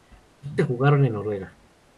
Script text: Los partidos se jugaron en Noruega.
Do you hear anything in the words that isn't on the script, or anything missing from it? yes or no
yes